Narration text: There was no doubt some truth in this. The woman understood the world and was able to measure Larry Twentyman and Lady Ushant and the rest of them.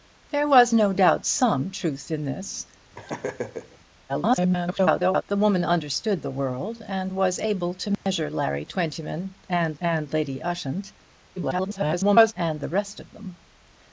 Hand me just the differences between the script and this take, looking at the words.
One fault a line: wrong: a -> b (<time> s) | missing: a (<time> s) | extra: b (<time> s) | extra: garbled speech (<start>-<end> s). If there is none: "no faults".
extra: garbled speech (4.1-5.2 s)
extra: and (9.8 s)
extra: garbled speech (11.4-12.3 s)